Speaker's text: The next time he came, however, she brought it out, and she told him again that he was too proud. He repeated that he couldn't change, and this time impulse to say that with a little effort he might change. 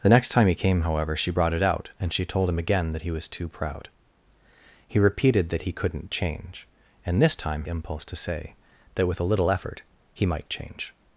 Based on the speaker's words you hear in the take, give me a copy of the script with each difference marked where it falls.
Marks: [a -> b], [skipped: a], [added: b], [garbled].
The next time he came, however, she brought it out, and she told him again that he was too proud. He repeated that he couldn't change, and this time impulse to say that with a little effort he might change.